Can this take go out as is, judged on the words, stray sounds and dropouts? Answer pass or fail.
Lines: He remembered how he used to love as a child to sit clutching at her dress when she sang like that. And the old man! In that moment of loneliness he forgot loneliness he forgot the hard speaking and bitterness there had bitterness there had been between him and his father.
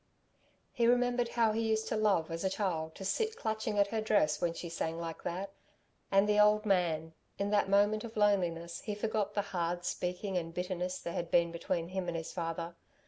fail